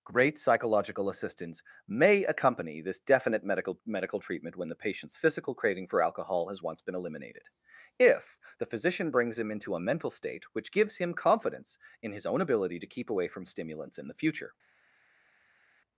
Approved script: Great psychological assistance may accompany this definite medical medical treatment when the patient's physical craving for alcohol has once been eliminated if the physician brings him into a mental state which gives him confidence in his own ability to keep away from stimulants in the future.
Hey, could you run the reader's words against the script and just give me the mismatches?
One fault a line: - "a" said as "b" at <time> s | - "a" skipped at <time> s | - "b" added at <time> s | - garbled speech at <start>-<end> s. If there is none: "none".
none